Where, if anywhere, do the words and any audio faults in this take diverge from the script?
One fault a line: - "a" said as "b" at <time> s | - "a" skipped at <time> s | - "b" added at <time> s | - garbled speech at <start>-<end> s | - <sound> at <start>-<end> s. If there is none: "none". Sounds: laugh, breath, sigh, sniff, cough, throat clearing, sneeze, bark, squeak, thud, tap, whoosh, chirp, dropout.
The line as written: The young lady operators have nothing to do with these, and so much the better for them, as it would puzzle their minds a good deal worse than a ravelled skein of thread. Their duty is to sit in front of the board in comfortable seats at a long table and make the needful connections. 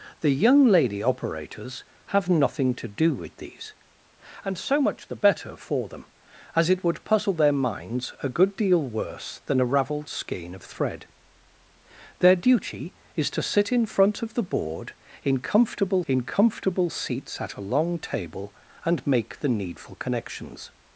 - "in comfortable" added at 16.1 s